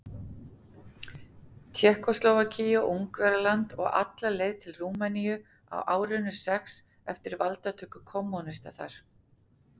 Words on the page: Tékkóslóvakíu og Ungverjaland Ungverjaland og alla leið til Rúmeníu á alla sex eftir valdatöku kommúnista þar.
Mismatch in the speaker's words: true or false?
true